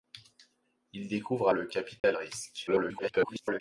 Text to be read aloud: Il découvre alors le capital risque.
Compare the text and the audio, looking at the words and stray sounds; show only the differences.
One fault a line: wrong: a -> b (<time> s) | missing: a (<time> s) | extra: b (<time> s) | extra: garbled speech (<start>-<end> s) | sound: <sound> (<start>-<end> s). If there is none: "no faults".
missing: alors (1.5 s)
sound: dropout (2.0-2.0 s)
extra: garbled speech (2.7-3.6 s)